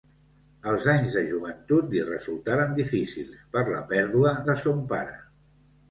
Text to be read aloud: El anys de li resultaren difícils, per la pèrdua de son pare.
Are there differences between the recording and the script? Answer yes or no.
yes